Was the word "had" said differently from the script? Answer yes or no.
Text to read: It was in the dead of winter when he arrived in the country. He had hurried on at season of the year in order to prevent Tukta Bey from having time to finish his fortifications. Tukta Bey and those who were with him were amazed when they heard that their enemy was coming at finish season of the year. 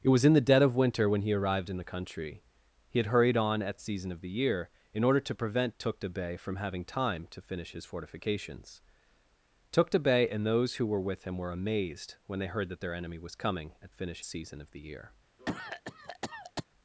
no